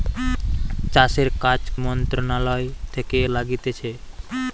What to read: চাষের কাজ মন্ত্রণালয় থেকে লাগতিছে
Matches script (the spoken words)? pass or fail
pass